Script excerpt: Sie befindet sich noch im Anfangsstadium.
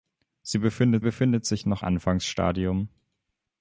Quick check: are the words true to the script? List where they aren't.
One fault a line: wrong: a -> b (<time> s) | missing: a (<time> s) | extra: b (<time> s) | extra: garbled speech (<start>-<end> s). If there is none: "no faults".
extra: befindet (1.0 s)
missing: im (1.8 s)